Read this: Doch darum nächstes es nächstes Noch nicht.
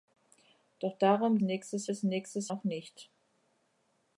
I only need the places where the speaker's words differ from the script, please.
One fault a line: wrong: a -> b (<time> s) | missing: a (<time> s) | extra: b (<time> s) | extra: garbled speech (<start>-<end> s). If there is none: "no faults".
no faults